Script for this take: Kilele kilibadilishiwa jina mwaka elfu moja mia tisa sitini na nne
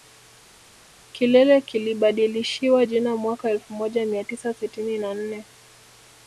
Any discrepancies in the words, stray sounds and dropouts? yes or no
no